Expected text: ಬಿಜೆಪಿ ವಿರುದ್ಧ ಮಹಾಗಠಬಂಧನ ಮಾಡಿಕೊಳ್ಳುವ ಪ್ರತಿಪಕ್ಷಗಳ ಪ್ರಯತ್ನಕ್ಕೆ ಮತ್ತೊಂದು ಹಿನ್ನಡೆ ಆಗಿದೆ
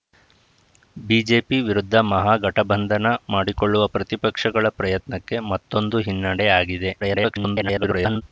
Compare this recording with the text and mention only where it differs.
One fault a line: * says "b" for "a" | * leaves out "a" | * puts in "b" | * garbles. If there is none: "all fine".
* garbles